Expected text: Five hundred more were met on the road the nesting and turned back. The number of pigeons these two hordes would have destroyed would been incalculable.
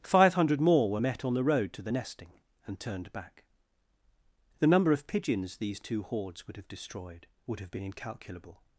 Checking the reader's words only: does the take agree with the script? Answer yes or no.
no